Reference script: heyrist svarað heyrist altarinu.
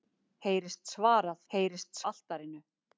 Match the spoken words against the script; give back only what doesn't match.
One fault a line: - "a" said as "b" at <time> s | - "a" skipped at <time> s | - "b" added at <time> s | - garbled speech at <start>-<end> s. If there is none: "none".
none